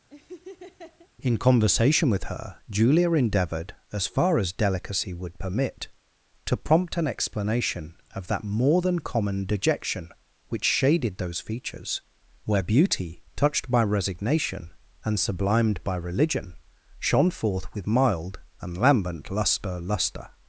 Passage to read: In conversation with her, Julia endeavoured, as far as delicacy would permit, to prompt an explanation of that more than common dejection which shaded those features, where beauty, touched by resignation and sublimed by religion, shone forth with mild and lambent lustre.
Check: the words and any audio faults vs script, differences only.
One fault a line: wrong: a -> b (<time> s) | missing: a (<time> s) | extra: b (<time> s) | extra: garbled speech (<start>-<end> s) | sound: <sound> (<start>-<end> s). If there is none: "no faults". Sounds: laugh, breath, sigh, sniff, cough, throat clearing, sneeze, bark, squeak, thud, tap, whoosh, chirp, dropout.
sound: laugh (0.1-1.1 s)
extra: lustre (19.8 s)